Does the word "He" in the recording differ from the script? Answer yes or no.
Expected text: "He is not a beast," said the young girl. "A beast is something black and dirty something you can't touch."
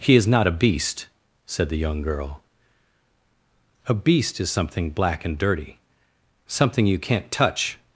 no